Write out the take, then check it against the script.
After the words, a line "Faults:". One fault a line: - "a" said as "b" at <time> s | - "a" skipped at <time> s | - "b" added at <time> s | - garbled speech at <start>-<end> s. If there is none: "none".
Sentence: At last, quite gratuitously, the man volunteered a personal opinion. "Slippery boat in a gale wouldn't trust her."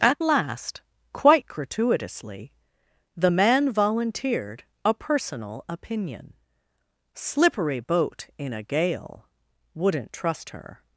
At last, quite gratuitously, the man volunteered a personal opinion. "Slippery boat in a gale wouldn't trust her."
Faults:
none